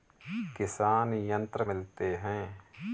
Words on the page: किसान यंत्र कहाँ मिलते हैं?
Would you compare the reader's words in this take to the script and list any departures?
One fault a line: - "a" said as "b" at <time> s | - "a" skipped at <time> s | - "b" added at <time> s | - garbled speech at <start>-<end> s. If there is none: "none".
- "कहाँ" skipped at 1.6 s